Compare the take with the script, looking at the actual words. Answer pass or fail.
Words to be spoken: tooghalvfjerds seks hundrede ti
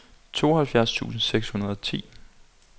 fail